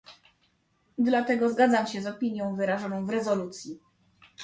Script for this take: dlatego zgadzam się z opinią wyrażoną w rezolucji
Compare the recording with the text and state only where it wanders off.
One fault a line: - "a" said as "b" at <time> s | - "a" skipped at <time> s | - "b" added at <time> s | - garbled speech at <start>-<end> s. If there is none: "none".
none